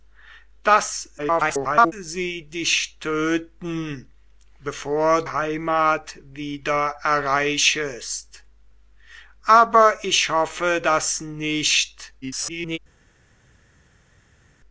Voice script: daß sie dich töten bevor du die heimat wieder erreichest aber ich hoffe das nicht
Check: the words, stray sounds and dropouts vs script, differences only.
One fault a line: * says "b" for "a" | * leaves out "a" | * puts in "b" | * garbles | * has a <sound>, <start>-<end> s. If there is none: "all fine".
* garbles
* leaves out "du die"
* garbles